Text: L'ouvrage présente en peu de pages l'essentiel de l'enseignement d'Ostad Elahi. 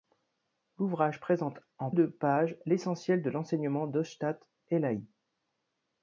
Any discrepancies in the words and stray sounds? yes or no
yes